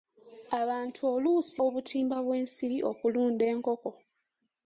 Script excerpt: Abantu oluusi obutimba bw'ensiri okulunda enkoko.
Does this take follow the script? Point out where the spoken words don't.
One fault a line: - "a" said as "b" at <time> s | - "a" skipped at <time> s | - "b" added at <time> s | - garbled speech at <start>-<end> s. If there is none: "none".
none